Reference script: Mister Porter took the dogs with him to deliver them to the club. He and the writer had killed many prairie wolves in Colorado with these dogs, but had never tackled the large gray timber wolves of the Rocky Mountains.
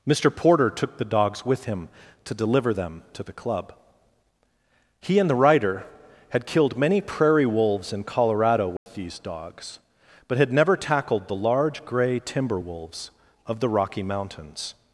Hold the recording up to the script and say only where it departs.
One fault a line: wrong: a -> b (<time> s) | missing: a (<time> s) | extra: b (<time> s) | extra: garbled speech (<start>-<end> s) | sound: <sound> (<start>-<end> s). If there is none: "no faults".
sound: dropout (8.8-8.9 s)